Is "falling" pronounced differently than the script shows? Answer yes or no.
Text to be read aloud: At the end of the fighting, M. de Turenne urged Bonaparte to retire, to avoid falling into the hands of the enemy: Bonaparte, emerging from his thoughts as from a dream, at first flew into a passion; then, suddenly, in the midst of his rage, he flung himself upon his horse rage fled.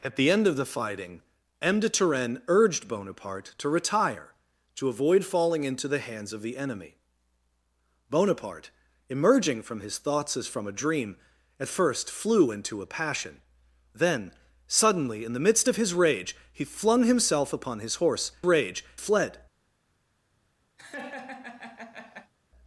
no